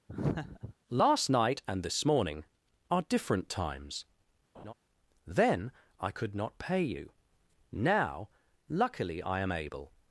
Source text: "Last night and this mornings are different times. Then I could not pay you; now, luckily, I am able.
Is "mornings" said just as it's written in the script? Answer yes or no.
no